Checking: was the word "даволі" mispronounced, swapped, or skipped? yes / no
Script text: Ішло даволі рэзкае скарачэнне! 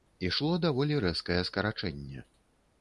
no